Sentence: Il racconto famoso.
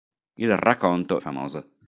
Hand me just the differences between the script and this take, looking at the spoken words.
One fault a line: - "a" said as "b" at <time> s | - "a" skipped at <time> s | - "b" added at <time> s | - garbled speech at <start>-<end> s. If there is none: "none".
none